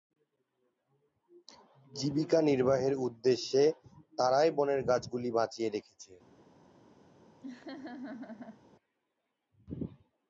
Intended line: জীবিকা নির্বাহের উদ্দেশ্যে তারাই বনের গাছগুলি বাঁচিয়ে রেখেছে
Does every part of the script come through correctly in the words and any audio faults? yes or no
no